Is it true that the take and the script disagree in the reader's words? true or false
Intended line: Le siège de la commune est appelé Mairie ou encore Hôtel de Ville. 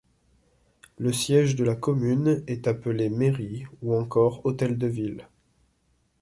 false